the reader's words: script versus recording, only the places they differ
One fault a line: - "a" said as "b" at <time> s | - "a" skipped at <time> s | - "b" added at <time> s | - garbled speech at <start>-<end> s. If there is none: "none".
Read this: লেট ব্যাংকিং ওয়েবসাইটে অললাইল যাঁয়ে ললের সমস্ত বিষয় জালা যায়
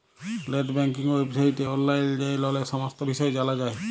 none